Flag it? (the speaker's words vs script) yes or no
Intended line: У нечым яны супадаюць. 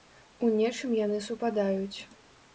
no